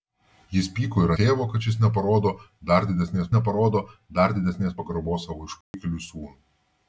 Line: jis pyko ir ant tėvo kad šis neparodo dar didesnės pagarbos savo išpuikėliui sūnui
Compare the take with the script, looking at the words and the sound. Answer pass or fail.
fail